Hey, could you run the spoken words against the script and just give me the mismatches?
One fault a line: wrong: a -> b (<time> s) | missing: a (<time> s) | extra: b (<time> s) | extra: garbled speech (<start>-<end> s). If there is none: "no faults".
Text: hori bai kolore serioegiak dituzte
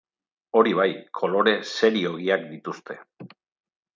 no faults